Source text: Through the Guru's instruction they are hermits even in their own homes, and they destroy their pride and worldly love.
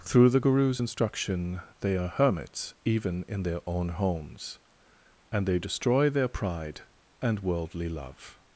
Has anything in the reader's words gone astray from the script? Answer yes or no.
no